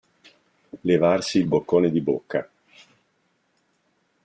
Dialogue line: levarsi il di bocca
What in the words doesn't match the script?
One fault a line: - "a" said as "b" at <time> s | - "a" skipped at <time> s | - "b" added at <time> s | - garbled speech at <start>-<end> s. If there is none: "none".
- "boccone" added at 1.4 s